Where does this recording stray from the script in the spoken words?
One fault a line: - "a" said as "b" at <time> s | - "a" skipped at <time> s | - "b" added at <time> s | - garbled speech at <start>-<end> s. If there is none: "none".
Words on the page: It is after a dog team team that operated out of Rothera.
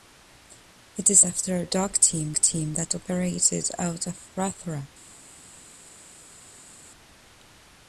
none